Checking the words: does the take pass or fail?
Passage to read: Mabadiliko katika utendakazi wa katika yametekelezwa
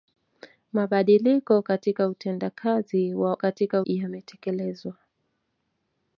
pass